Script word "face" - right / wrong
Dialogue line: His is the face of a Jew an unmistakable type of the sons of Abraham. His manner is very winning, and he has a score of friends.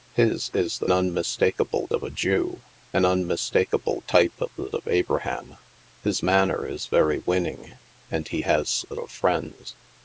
wrong